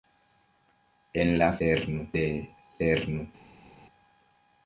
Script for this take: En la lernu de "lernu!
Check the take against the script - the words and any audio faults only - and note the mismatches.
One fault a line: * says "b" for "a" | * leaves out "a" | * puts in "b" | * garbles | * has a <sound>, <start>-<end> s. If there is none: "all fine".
all fine